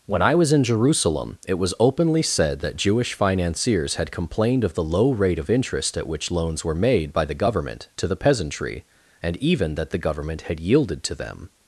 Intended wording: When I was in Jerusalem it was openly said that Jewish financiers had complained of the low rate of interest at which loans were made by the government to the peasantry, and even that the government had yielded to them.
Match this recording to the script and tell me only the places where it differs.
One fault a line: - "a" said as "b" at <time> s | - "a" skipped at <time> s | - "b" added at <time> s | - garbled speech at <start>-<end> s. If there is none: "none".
none